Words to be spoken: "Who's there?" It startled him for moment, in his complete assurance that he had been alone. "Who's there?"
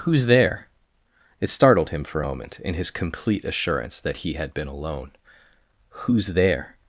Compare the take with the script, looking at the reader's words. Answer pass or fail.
pass